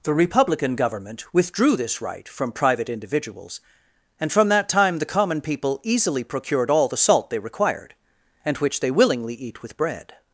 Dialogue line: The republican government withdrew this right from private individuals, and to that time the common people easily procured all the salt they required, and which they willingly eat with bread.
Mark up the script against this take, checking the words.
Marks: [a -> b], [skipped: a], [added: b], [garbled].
The republican government withdrew this right from private individuals, and [to -> from] that time the common people easily procured all the salt they required, and which they willingly eat with bread.